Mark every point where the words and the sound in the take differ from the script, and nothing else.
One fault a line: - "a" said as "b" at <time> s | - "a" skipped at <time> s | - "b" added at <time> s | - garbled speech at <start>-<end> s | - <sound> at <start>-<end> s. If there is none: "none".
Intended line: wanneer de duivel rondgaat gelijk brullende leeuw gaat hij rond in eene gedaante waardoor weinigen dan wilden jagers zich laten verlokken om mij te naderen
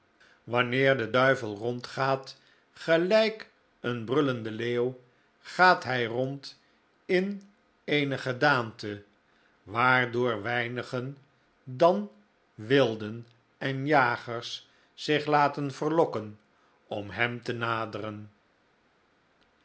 - "een" added at 3.8 s
- "en" added at 13.6 s
- "mij" said as "hem" at 17.1 s